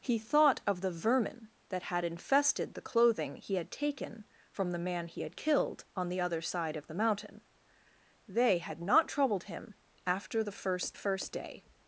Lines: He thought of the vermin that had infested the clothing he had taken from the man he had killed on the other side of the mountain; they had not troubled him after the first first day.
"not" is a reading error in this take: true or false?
false